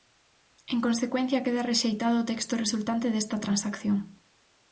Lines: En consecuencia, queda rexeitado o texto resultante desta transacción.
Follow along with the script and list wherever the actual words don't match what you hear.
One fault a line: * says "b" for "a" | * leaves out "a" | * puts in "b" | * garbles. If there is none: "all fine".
all fine